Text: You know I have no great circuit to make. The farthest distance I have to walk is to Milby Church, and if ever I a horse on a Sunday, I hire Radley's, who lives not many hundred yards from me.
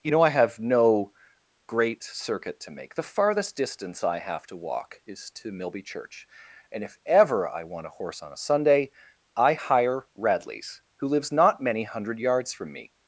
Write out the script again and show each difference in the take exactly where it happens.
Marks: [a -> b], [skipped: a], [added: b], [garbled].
You know I have no great circuit to make. The farthest distance I have to walk is to Milby Church, and if ever I [added: want] a horse on a Sunday, I hire Radley's, who lives not many hundred yards from me.